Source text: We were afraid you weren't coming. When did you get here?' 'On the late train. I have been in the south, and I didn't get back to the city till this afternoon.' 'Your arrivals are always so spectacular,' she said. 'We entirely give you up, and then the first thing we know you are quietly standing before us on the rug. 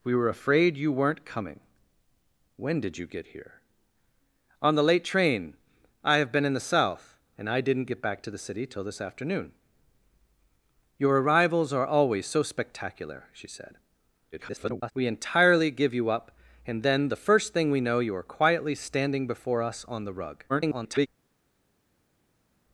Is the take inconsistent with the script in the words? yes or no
yes